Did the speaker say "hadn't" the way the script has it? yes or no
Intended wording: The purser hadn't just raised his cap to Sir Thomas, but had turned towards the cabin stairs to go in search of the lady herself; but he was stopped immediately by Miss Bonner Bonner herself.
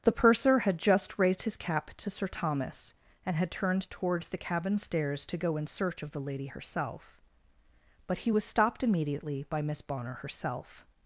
no